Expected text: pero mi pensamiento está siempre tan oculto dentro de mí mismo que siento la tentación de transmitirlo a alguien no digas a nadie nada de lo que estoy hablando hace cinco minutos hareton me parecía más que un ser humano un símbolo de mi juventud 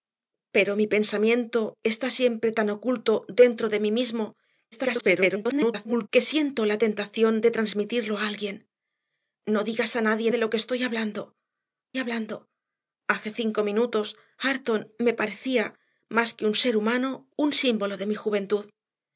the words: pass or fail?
fail